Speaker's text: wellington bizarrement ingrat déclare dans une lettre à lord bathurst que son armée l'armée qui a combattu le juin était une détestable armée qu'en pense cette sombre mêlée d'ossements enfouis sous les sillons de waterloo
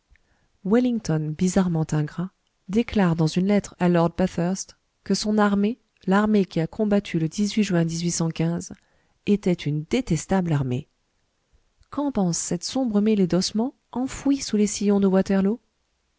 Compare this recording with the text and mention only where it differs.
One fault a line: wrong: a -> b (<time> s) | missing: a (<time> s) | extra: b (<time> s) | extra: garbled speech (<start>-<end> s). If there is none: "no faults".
no faults